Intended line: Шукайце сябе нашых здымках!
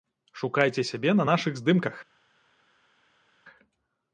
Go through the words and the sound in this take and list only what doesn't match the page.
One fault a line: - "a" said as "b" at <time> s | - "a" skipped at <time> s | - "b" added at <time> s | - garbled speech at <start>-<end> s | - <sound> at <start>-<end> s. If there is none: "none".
- "на" added at 1.1 s